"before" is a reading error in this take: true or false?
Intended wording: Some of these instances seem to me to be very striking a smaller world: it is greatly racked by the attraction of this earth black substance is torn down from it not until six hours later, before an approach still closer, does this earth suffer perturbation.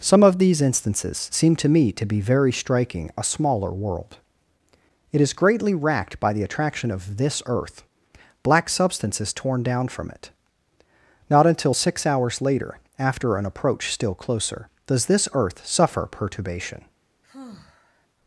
true